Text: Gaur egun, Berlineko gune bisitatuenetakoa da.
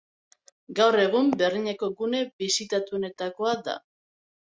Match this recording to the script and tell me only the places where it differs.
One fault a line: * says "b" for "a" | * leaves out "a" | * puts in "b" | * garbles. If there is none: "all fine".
all fine